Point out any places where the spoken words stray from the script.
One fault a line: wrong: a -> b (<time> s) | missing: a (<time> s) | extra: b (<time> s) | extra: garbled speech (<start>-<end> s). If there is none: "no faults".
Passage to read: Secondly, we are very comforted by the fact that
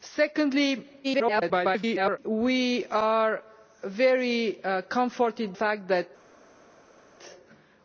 extra: garbled speech (1.0-2.2 s)
missing: by the (5.5 s)